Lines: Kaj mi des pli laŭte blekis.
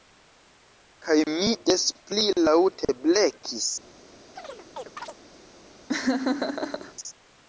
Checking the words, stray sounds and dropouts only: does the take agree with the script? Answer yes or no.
no